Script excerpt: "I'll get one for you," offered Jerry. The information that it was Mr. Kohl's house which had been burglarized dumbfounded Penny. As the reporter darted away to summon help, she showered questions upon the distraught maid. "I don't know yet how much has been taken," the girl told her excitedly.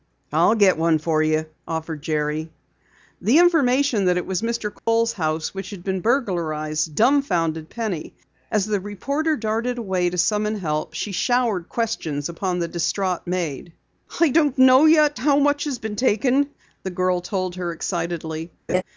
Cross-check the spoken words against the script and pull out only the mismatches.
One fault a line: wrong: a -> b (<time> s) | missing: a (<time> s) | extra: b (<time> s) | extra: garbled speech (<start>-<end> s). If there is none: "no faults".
no faults